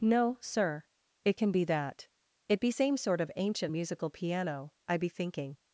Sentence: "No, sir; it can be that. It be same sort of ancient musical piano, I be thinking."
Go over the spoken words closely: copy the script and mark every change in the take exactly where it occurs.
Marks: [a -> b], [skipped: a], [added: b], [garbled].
"No, sir; it can be that. It be same sort of ancient musical piano, I be thinking."